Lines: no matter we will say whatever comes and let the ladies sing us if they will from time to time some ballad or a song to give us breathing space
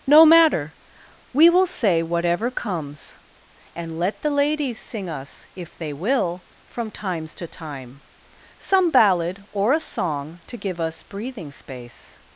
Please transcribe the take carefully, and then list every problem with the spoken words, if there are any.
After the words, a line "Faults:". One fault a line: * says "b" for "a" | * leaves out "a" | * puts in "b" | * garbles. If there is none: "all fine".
no matter we will say whatever comes and let the ladies sing us if they will from times to time some ballad or a song to give us breathing space
Faults:
* says "times" for "time"